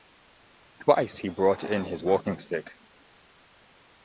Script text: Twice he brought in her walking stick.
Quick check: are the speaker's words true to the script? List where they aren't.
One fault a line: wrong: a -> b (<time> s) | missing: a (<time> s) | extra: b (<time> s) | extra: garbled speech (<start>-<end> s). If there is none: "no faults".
wrong: her -> his (1.9 s)